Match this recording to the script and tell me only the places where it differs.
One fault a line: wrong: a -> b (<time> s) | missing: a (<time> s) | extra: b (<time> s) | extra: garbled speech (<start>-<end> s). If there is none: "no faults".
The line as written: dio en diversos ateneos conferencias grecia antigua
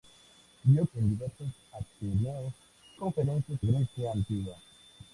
no faults